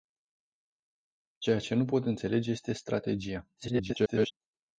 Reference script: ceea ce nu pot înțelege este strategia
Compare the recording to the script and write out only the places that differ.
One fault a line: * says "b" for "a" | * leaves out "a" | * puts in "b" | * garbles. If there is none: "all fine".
* garbles